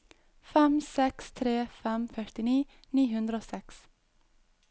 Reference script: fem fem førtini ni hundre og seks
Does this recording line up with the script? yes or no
no